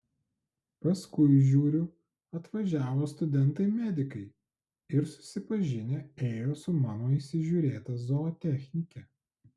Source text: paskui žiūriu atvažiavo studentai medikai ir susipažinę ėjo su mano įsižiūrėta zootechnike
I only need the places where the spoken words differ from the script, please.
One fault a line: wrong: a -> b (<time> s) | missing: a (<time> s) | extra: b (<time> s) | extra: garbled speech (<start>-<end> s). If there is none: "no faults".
no faults